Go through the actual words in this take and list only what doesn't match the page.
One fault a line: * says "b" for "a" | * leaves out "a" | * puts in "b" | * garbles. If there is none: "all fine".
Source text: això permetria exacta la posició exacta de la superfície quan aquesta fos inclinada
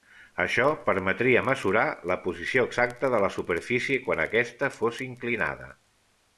* says "mesurar" for "exacta"